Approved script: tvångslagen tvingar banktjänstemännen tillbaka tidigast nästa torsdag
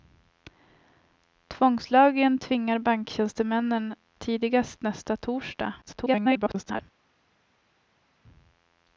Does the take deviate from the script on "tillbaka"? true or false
true